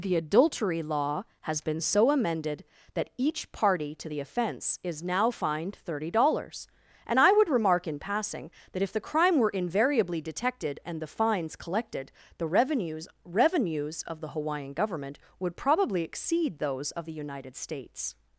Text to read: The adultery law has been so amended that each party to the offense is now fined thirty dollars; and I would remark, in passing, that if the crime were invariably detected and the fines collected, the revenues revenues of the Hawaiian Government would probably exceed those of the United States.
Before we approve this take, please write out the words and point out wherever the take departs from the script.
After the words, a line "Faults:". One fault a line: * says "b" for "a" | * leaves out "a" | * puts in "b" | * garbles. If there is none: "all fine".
The adultery law has been so amended that each party to the offense is now fined thirty dollars; and I would remark, in passing, that if the crime were invariably detected and the fines collected, the revenues revenues of the Hawaiian Government would probably exceed those of the United States.
Faults:
all fine